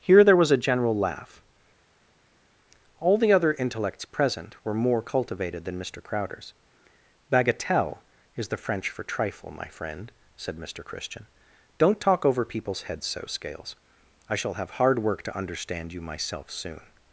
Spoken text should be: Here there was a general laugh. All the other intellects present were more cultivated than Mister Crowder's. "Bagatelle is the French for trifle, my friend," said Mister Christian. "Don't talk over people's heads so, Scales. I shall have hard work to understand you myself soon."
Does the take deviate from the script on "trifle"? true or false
false